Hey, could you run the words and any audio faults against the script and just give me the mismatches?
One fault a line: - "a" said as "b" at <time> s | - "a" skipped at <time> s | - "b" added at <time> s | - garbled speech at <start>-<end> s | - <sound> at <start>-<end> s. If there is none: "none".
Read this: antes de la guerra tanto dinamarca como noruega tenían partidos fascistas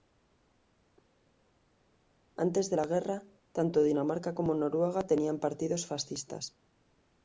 none